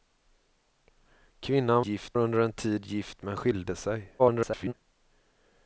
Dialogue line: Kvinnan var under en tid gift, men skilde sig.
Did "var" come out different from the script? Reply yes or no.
yes